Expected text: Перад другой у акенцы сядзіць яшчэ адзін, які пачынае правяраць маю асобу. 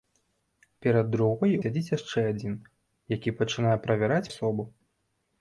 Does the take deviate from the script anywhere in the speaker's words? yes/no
yes